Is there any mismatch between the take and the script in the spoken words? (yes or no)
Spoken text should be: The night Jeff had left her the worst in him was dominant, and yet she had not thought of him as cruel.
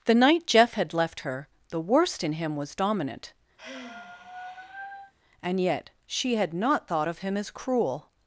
no